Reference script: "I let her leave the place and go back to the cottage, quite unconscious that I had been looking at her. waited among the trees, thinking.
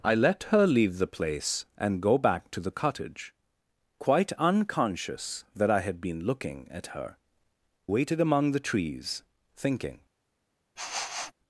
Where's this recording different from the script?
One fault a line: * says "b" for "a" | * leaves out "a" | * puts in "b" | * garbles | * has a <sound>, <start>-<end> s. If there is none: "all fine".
* has a sniff, 10.8-11.3 s